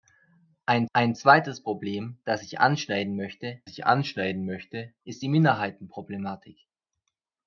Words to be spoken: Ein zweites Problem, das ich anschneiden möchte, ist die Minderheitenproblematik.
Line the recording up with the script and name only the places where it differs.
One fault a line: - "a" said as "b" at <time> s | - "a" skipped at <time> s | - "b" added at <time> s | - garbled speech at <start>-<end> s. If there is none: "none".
- "ein" added at 0.9 s
- "ich anschneiden möchte" added at 3.7 s